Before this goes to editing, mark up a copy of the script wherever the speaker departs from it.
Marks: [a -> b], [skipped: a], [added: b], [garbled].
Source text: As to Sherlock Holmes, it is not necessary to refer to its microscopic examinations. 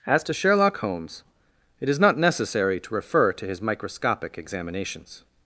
As to Sherlock Holmes, it is not necessary to refer to [its -> his] microscopic examinations.